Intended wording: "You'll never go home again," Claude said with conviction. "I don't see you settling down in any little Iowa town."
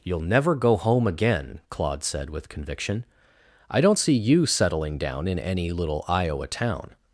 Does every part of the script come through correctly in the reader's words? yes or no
yes